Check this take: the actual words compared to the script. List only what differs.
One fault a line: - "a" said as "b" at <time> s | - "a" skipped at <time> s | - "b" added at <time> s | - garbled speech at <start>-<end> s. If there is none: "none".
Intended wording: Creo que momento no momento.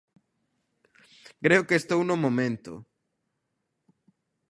- "momento" said as "estou" at 1.8 s